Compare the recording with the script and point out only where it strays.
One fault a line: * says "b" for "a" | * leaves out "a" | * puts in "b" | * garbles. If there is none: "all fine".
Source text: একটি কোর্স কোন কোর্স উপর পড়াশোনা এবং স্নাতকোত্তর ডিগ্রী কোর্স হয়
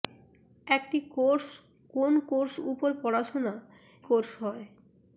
* leaves out "এবং স্নাতকোত্তর ডিগ্রী"